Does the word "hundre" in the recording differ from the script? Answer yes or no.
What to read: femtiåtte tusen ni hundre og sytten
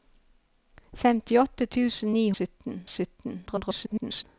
yes